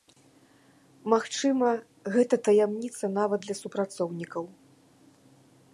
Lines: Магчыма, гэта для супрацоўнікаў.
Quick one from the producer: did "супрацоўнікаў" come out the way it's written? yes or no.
yes